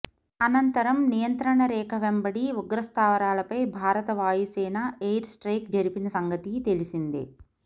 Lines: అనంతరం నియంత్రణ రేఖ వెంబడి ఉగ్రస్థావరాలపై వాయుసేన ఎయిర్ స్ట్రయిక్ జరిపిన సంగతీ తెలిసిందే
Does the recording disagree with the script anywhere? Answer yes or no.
yes